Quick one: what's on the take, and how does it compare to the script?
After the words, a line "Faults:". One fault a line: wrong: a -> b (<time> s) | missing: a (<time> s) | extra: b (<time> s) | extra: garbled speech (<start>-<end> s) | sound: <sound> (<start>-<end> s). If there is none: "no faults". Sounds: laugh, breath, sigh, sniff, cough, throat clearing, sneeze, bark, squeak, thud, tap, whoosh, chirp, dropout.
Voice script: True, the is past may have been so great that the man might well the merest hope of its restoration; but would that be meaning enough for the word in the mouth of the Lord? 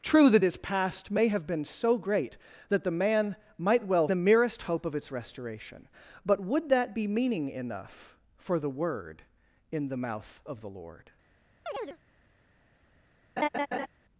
True, the is past may have been so great that the man might well the merest hope of its restoration; but would that be meaning enough for the word in the mouth of the Lord?
Faults:
sound: chirp (11.7-12.0 s)
sound: laugh (13.4-13.9 s)